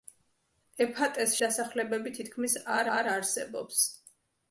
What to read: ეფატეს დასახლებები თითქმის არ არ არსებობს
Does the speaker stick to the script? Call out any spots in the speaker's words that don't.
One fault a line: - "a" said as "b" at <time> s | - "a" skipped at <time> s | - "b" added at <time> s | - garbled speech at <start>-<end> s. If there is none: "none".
none